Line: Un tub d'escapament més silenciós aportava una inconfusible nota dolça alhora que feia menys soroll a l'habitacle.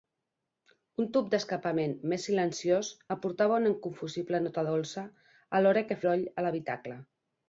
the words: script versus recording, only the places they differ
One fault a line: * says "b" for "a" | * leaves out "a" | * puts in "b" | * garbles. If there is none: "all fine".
* leaves out "feia menys"